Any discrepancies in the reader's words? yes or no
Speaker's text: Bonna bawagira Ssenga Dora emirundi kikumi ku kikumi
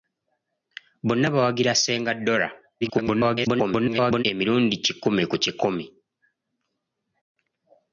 yes